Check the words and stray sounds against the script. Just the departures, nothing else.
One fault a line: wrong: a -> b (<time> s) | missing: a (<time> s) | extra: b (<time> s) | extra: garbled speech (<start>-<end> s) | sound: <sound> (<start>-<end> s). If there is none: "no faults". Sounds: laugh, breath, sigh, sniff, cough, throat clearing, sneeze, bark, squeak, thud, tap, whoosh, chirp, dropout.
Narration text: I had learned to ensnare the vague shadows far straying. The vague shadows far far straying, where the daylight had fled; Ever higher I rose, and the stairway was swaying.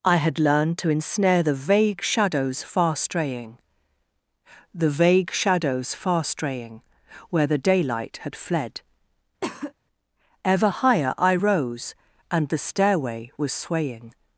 missing: far (6.2 s)
sound: cough (9.4-9.7 s)